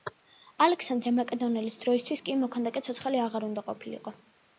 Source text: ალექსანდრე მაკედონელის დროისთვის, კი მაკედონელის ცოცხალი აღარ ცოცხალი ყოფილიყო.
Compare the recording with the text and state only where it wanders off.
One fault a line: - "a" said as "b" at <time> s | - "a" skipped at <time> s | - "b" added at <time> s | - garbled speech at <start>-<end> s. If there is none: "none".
- "მაკედონელის" said as "მოქანდაკე" at 2.5 s
- "ცოცხალი" said as "უნდა" at 3.5 s